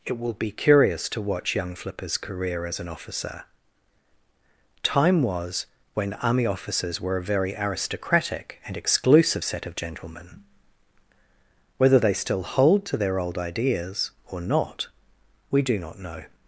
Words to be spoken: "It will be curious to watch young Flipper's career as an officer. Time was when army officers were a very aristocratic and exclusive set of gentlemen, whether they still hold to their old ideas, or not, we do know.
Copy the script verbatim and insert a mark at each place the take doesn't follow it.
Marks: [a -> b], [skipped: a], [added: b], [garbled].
"It will be curious to watch young Flipper's career as an officer. Time was when army officers were a very aristocratic and exclusive set of gentlemen, whether they still hold to their old ideas, or not, we do [added: not] know.